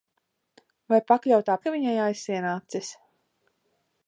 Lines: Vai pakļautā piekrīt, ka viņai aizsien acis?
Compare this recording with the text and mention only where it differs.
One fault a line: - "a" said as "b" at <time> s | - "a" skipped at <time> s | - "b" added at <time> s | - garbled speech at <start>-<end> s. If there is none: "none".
- "piekrīt" skipped at 1.6 s